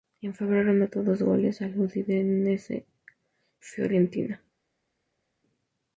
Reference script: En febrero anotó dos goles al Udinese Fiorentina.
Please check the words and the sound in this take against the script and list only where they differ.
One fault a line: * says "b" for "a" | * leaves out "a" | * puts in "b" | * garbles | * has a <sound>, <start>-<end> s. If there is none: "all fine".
all fine